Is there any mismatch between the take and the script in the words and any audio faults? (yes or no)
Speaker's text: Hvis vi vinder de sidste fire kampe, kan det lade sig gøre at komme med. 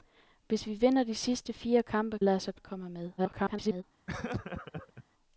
yes